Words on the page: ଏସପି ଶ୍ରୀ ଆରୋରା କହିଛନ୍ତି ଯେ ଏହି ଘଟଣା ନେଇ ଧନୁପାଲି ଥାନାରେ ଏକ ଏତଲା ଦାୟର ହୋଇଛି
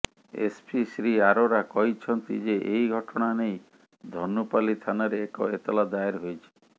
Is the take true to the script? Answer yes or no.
yes